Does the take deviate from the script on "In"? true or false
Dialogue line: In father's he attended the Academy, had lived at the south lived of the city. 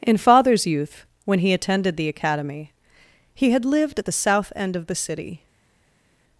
false